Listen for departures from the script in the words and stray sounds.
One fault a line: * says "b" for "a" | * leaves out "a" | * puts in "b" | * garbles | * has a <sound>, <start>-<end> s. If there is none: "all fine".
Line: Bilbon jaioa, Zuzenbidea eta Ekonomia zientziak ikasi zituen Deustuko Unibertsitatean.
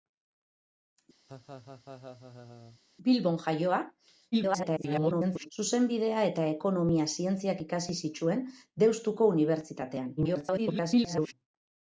* has a laugh, 1.3-2.8 s
* garbles
* garbles